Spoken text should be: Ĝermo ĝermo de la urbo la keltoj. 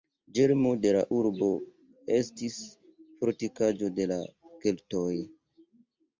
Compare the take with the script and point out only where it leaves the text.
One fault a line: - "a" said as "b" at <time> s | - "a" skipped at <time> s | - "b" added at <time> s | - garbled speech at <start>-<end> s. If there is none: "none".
- "ĝermo" skipped at 0.7 s
- "estis fortikaĵo de" added at 2.2 s